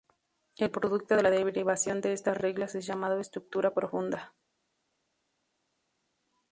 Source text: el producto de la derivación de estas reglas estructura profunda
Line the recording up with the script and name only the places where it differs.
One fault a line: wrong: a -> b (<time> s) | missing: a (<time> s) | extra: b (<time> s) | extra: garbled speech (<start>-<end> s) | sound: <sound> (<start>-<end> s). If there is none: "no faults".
extra: es llamado (2.7 s)